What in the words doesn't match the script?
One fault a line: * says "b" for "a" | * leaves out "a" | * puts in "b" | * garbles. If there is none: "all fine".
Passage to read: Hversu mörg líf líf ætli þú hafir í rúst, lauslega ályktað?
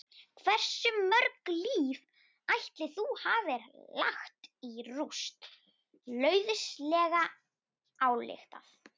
* leaves out "líf"
* puts in "lagt"